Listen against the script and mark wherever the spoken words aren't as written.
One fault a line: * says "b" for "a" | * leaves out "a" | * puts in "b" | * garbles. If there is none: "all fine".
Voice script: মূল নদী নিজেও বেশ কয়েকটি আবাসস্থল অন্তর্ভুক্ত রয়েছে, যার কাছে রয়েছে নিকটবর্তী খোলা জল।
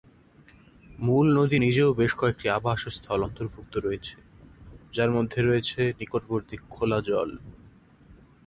* says "মধ্যে" for "কাছে"